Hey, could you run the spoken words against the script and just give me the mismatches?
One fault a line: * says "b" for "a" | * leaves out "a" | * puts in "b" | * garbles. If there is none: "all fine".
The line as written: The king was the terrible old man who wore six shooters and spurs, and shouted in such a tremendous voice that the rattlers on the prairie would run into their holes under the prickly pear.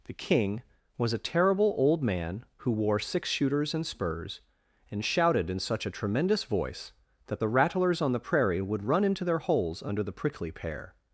* says "a" for "the"